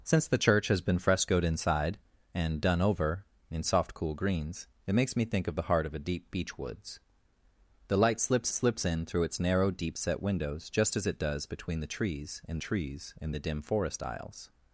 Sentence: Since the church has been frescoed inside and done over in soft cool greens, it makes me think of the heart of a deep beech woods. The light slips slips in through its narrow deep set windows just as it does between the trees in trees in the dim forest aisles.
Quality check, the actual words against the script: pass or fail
pass